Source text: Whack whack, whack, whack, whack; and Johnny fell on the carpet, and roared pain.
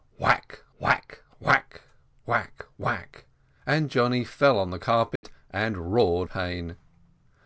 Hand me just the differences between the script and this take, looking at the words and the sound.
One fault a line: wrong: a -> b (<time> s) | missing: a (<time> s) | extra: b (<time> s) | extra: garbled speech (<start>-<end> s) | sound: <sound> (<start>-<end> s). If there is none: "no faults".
sound: dropout (5.2-5.2 s)